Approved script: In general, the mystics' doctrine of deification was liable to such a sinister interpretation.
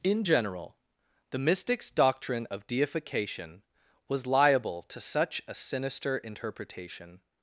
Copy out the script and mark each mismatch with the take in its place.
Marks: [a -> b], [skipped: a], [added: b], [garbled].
In general, the mystics' doctrine of deification was liable to such a sinister interpretation.